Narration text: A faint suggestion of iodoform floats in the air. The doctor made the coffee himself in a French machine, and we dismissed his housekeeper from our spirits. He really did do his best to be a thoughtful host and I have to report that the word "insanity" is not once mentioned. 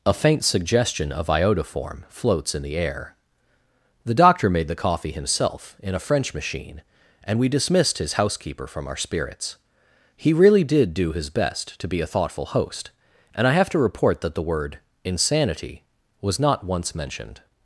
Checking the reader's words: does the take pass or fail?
fail